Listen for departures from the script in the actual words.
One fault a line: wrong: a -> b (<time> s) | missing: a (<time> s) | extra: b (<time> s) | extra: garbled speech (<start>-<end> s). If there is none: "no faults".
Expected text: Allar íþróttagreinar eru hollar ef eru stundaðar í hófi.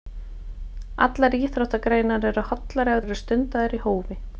no faults